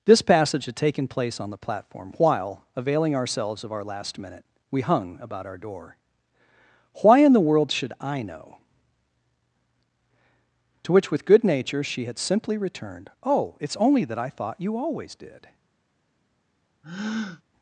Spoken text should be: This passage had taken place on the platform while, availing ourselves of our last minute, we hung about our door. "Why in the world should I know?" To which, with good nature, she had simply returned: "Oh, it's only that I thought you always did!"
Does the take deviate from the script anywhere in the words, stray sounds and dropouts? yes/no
yes